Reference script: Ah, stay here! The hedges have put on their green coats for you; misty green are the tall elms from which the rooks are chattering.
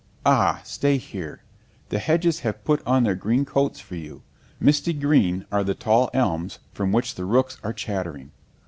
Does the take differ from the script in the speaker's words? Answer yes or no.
no